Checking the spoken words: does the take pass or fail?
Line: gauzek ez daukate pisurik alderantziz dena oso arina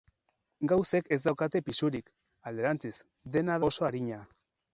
pass